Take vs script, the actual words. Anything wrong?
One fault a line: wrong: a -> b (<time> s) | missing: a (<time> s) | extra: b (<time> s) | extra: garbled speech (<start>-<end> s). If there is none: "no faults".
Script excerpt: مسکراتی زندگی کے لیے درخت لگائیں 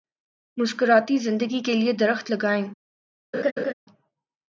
no faults